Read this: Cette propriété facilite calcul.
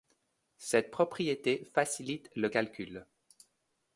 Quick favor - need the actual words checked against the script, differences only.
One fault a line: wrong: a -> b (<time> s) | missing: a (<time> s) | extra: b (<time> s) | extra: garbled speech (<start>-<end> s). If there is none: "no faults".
extra: le (2.4 s)